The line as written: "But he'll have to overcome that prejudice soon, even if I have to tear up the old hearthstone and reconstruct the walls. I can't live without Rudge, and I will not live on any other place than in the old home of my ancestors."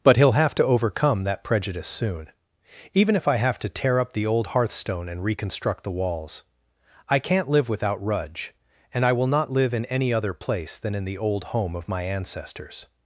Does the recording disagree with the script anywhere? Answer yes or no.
yes